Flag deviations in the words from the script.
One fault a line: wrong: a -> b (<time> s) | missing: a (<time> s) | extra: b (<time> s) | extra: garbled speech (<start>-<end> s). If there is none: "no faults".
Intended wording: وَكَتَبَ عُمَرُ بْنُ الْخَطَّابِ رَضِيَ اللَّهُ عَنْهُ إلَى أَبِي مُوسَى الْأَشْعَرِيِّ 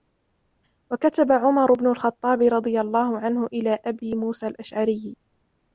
no faults